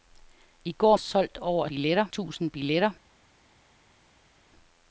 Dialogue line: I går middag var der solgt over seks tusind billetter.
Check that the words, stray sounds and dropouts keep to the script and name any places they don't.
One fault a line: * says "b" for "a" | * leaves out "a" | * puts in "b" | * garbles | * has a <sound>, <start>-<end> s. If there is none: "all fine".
* leaves out "middag var der"
* says "billetter" for "seks"